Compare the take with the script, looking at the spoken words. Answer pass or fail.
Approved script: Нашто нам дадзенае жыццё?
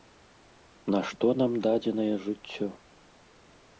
pass